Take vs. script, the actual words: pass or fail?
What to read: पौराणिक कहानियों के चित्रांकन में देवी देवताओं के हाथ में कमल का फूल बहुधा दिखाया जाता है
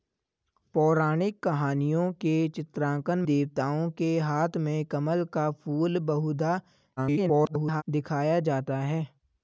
fail